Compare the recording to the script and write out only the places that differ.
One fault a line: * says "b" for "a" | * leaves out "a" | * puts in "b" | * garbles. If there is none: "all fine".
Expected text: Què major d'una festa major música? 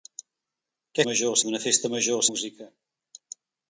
all fine